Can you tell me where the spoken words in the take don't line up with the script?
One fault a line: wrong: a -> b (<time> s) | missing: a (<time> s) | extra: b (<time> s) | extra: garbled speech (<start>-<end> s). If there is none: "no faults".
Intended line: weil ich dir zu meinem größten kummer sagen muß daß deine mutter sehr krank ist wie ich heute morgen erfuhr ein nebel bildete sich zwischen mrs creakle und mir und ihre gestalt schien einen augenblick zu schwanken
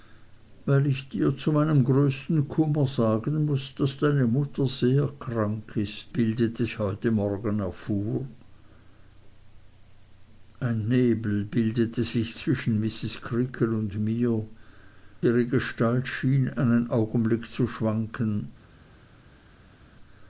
wrong: wie -> bildete (6.1 s)
missing: und (14.4 s)